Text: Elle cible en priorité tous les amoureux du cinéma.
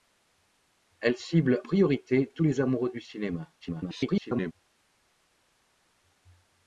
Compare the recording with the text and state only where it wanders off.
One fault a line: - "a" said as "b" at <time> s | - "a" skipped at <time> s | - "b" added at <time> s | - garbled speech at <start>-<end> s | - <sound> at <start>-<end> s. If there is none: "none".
- "en" skipped at 1.6 s
- garbled speech at 3.6-4.5 s